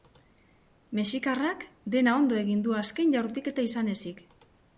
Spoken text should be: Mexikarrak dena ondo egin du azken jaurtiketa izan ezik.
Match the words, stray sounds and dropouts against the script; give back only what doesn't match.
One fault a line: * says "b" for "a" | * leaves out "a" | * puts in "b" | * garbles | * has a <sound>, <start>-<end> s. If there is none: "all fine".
all fine